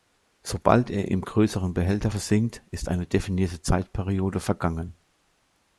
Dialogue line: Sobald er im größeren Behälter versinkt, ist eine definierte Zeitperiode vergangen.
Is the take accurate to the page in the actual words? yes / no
yes